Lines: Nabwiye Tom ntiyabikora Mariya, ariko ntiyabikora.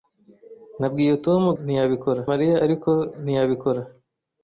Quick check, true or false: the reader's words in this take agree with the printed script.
true